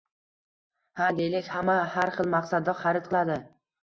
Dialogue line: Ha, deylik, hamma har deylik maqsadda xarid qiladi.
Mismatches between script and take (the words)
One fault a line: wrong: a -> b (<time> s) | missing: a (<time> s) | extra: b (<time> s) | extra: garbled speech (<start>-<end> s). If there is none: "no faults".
wrong: deylik -> xil (2.1 s)